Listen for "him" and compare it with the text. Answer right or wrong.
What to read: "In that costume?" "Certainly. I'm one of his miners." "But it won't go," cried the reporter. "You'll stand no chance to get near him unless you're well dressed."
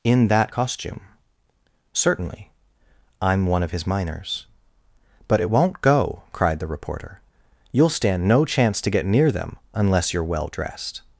wrong